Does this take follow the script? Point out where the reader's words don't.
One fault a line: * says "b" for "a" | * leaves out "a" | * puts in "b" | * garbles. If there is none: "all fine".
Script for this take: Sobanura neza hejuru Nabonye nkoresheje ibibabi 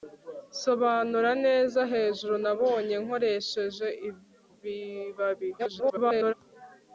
* garbles